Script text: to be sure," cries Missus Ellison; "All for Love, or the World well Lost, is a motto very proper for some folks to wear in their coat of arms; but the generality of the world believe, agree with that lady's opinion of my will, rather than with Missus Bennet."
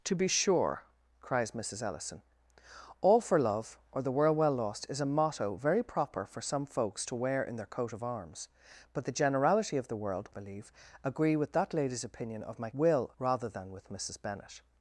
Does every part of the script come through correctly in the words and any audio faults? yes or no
yes